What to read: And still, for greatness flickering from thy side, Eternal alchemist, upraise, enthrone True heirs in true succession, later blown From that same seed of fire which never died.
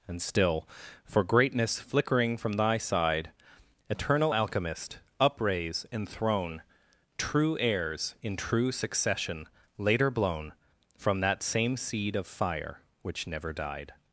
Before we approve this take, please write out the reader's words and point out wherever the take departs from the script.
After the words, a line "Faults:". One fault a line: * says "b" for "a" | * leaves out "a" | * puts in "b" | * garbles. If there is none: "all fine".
And still, for greatness flickering from thy side, Eternal alchemist, upraise, enthrone True heirs in true succession, later blown From that same seed of fire which never died.
Faults:
all fine